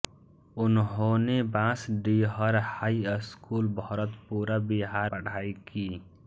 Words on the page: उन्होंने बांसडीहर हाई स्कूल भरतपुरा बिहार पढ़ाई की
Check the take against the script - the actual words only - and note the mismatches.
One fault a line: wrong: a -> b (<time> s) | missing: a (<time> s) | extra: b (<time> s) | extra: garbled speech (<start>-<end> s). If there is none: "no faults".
no faults